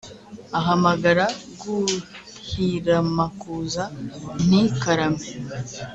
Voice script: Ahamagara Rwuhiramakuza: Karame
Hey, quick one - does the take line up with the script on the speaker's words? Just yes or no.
no